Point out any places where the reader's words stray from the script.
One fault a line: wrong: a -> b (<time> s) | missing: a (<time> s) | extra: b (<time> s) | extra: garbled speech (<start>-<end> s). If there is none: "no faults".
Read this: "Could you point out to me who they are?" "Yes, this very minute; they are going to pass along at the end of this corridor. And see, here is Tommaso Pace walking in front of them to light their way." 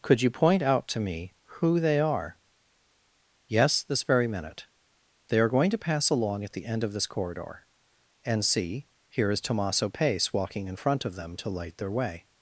no faults